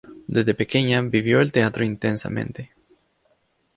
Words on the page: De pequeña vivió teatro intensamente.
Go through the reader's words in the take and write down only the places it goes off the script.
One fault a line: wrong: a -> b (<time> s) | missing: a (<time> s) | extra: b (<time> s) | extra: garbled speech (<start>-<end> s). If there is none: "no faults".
wrong: De -> Desde (0.2 s)
extra: el (1.4 s)